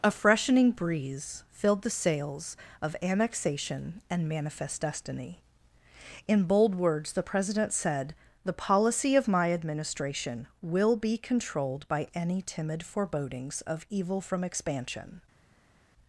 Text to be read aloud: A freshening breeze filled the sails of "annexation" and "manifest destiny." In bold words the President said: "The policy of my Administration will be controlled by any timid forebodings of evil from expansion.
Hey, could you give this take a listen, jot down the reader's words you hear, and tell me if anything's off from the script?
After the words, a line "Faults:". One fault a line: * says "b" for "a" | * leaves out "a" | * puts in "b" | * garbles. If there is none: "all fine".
A freshening breeze filled the sails of "annexation" and "manifest destiny." In bold words the President said: "The policy of my Administration will be controlled by any timid forebodings of evil from expansion.
Faults:
all fine